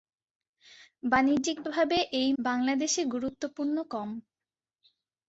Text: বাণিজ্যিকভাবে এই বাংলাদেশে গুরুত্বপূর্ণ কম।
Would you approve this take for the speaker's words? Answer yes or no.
yes